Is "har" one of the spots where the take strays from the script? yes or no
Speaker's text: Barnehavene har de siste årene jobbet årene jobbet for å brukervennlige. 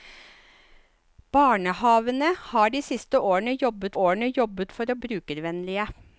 no